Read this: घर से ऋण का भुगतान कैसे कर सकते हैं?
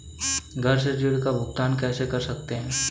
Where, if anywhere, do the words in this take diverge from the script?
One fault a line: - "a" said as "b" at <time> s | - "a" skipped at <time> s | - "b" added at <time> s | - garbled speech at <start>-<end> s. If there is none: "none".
none